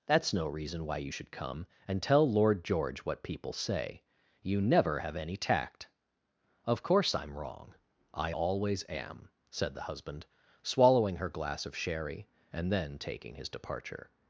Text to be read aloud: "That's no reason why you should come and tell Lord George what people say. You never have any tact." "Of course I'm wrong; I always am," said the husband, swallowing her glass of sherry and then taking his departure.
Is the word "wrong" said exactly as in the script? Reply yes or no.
yes